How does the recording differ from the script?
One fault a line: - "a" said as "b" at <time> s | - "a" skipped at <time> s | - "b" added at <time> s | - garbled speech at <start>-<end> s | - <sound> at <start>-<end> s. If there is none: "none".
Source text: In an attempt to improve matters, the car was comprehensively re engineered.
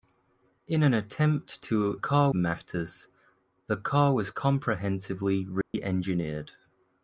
- "improve" said as "car" at 1.9 s
- dropout at 5.6-5.7 s